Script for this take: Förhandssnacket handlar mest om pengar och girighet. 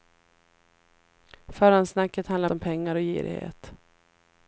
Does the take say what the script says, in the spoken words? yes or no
no